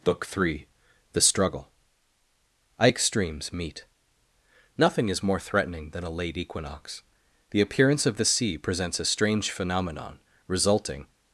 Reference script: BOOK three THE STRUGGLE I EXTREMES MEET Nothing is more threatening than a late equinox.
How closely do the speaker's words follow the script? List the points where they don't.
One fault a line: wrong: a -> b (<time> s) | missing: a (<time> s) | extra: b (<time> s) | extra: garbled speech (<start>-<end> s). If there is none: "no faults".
extra: The appearance of the sea presents a strange phenomenon resulting (7.5 s)